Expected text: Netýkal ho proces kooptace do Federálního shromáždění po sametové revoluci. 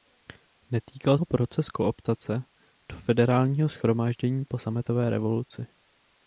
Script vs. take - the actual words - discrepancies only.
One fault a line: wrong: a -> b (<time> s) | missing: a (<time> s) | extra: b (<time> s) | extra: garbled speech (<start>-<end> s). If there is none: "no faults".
no faults